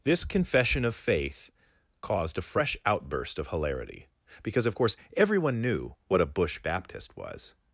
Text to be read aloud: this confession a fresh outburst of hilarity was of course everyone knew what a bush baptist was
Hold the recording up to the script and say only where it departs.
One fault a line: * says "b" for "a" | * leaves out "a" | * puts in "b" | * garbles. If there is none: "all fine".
* puts in "of faith caused"
* says "because" for "was"